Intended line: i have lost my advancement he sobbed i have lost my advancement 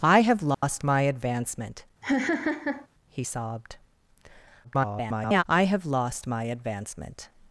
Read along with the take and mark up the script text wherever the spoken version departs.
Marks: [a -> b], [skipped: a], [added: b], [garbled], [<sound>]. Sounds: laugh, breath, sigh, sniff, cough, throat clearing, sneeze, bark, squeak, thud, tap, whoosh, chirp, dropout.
i have lost [dropout] my advancement [laugh] he sobbed [garbled] i have lost my advancement